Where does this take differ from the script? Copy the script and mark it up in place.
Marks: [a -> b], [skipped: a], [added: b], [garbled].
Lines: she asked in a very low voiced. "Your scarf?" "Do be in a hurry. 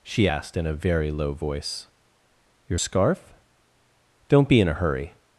she asked in a very low [voiced. -> voice] "Your scarf?" ["Do -> Don't] be in a hurry.